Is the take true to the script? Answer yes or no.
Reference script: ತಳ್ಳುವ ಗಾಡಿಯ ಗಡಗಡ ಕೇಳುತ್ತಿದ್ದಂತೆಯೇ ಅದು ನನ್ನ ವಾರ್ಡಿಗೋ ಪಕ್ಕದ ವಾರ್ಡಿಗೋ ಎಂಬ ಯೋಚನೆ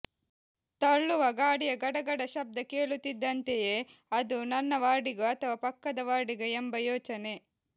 no